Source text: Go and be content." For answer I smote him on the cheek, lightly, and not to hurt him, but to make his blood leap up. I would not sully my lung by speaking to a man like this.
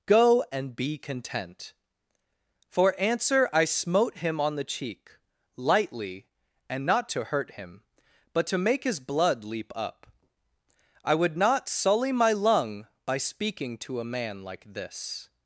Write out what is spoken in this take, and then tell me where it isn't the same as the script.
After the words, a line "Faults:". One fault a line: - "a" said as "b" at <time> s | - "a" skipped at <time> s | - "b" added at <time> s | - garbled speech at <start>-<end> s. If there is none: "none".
Go and be content." For answer I smote him on the cheek, lightly, and not to hurt him, but to make his blood leap up. I would not sully my lung by speaking to a man like this.
Faults:
none